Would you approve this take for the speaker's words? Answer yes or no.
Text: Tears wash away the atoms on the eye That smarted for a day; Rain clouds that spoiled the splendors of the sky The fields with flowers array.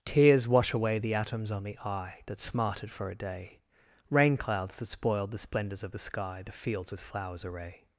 yes